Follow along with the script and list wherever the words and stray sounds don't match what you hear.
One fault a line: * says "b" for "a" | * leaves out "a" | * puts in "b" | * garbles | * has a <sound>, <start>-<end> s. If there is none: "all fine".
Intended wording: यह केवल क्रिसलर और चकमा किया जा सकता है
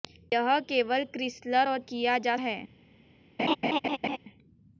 * leaves out "चकमा"
* leaves out "सकता"
* has a laugh, 3.4-4.2 s